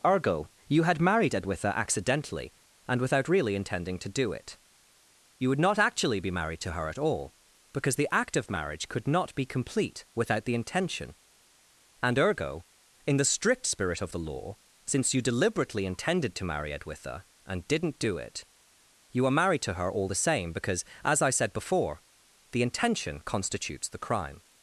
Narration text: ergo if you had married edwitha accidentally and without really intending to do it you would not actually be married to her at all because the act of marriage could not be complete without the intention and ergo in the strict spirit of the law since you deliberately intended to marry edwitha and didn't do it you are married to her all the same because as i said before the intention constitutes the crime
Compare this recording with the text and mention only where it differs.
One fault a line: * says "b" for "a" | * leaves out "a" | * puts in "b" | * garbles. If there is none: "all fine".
* leaves out "if"